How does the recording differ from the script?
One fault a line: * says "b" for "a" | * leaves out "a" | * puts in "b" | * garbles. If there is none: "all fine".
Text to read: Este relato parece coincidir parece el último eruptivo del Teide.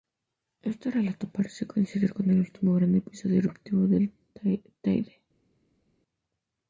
* says "con" for "parece"
* puts in "gran episodio"